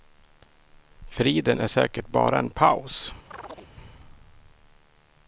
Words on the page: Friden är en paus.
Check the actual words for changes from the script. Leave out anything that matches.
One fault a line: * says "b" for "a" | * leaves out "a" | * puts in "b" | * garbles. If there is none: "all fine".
* puts in "säkert bara"